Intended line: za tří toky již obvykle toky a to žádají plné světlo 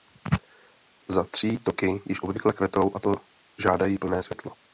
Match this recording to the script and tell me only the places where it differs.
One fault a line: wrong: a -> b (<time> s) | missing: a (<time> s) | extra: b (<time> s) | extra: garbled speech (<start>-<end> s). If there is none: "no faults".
wrong: toky -> kvetou (2.5 s)